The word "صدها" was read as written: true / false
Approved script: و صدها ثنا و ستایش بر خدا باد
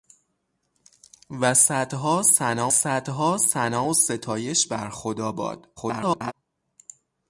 true